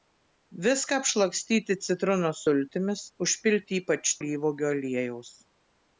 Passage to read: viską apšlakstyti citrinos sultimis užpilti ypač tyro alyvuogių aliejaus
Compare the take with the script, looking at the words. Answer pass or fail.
fail